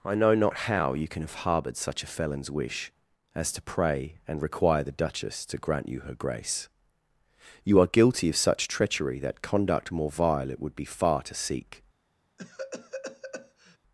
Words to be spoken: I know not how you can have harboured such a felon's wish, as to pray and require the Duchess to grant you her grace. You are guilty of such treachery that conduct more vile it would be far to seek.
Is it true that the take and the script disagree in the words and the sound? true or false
true